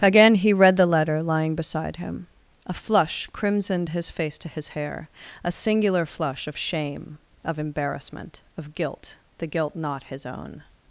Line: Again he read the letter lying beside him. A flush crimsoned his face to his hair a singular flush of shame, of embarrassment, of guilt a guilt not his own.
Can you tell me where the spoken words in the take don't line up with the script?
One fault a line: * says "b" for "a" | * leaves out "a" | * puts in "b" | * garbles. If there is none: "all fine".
* says "the" for "a"